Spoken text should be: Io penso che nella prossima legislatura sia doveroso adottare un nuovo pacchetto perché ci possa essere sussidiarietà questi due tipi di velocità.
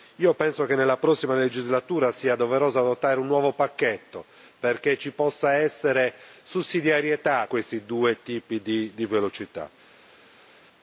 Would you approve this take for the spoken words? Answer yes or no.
yes